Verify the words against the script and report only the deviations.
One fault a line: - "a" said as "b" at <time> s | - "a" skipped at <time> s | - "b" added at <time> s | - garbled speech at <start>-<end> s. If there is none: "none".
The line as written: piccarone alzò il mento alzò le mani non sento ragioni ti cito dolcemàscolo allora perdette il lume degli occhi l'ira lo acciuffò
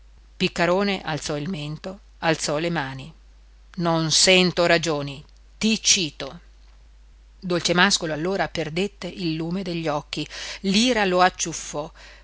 none